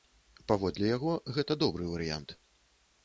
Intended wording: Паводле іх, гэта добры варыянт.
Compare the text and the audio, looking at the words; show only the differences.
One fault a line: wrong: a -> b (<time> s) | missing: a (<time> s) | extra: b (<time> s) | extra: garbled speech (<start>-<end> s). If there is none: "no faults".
wrong: іх -> яго (1.0 s)